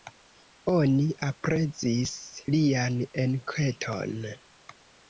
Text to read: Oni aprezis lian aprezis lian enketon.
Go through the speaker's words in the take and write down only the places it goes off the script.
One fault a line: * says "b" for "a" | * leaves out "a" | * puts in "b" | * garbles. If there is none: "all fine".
* leaves out "aprezis lian"